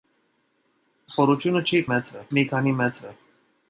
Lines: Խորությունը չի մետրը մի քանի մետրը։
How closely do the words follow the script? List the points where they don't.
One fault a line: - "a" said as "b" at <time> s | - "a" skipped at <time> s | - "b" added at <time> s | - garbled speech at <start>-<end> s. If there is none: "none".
none